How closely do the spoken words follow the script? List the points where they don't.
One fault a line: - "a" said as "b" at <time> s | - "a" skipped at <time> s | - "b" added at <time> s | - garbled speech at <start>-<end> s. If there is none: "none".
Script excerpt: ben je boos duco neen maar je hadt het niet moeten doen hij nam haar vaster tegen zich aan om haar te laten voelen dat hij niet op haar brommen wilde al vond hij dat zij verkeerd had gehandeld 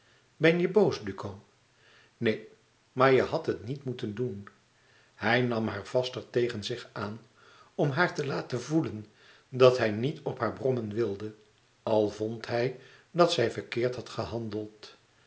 none